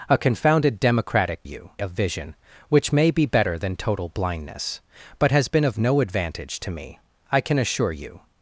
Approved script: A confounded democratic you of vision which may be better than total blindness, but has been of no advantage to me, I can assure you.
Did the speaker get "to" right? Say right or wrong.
right